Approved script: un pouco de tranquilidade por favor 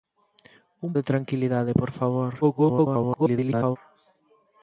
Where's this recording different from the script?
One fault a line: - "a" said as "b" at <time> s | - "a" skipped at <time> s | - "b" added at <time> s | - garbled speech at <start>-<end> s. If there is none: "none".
- "pouco" skipped at 0.9 s
- garbled speech at 2.4-3.8 s